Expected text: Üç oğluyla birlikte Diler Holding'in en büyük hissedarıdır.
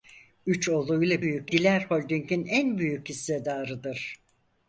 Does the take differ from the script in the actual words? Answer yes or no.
yes